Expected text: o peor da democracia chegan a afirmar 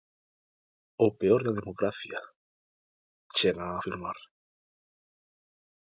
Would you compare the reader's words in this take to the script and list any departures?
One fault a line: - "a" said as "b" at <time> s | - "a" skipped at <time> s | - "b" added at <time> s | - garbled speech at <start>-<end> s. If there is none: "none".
none